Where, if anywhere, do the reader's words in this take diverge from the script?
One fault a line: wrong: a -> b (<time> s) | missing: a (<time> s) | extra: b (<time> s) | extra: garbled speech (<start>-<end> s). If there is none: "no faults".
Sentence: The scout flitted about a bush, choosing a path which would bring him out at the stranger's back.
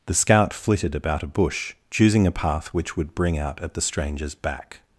missing: him (3.4 s)